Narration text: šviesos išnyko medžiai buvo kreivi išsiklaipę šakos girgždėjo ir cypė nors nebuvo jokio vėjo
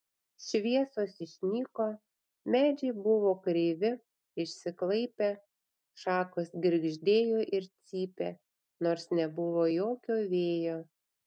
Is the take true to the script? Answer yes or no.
yes